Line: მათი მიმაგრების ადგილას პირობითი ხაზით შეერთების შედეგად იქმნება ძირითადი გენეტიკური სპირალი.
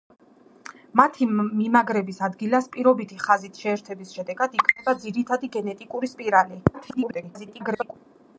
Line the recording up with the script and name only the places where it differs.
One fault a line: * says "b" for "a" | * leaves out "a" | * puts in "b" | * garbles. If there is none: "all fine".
* garbles